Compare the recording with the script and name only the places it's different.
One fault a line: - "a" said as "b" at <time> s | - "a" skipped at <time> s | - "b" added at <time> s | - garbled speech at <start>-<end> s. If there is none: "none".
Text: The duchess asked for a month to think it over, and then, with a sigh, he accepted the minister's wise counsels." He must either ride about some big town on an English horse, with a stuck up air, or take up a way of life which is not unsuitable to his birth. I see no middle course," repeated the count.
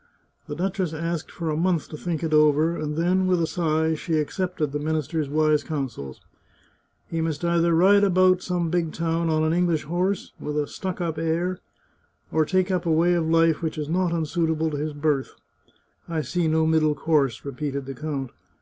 - "he" said as "she" at 4.0 s